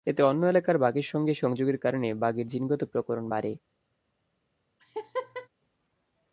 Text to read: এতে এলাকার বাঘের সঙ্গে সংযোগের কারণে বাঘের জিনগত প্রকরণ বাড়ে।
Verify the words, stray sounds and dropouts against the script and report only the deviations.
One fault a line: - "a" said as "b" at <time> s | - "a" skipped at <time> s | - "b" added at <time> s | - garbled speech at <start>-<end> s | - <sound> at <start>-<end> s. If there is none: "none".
- "অন্য" added at 0.2 s
- laugh at 4.8-5.5 s